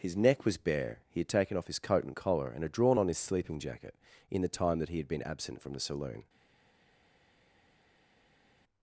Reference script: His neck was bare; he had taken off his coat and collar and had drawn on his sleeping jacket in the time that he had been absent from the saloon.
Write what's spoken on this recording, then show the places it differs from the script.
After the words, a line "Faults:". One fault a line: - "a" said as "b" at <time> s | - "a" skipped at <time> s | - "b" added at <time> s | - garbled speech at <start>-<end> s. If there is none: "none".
His neck was bare; he had taken off his coat and collar and had drawn on his sleeping jacket in the time that he had been absent from the saloon.
Faults:
none